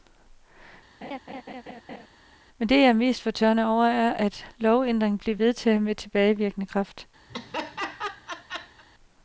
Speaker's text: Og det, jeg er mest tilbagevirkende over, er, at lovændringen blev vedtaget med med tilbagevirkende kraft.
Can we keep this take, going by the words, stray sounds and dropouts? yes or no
no